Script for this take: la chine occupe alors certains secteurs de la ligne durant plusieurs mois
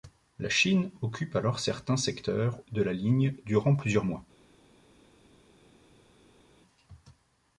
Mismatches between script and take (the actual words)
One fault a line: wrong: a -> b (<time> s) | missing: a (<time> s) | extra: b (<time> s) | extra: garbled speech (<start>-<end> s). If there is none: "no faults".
no faults